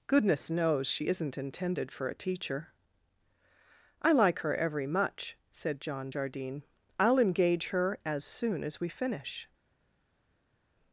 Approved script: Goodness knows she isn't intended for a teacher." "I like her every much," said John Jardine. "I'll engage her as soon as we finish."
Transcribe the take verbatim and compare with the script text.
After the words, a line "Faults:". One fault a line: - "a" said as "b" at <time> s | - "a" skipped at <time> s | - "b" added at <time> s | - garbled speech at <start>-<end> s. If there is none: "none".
Goodness knows she isn't intended for a teacher." "I like her every much," said John Jardine. "I'll engage her as soon as we finish."
Faults:
none